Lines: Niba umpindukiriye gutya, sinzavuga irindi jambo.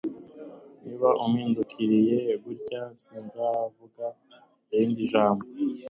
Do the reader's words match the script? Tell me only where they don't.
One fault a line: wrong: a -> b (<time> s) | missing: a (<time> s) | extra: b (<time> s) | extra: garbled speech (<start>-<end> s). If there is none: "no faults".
no faults